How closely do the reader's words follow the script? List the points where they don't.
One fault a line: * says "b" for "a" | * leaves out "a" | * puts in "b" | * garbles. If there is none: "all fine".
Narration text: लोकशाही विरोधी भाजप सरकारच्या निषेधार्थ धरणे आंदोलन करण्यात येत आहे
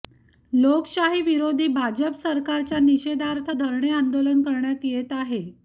all fine